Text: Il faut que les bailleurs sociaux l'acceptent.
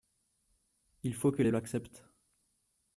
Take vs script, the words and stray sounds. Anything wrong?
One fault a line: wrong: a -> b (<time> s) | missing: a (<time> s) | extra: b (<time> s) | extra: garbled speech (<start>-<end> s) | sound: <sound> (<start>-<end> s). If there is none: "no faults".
missing: bailleurs sociaux (1.5 s)